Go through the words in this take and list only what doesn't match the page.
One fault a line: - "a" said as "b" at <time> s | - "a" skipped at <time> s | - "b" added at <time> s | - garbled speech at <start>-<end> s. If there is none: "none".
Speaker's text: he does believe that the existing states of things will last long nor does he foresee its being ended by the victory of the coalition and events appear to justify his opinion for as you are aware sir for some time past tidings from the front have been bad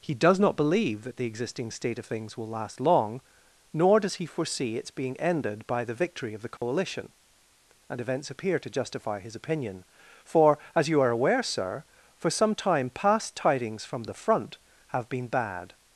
- "not" added at 0.4 s
- "states" said as "state" at 1.7 s